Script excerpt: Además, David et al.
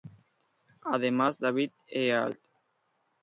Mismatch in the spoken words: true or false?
false